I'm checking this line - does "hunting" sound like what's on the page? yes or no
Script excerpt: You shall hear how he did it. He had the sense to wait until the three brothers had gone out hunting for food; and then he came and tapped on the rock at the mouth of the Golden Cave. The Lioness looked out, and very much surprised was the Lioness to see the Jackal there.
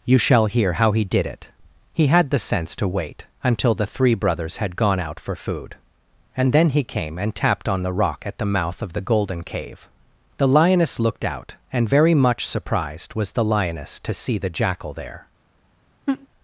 no